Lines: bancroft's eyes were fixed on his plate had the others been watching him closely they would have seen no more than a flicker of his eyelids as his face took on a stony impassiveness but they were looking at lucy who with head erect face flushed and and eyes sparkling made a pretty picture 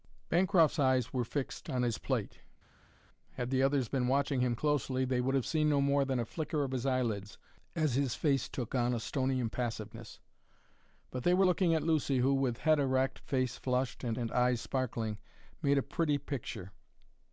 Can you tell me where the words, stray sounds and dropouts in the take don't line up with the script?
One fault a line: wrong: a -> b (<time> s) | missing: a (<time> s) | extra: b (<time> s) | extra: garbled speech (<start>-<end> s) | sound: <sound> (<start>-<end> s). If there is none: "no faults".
no faults